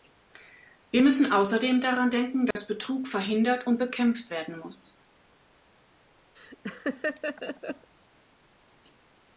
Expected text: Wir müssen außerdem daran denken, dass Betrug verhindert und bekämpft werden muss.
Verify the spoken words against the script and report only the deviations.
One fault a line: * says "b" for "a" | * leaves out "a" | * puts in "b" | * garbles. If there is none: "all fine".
all fine